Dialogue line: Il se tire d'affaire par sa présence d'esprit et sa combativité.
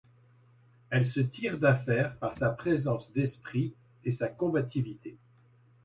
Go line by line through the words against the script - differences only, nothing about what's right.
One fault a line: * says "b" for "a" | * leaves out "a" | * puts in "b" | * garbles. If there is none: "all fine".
* says "Elle" for "Il"